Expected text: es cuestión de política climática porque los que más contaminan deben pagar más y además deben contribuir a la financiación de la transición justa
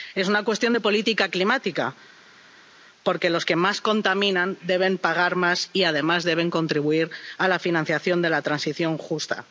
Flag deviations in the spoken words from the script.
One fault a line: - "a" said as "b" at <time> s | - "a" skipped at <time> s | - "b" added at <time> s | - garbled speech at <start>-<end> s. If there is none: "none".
- "una" added at 0.3 s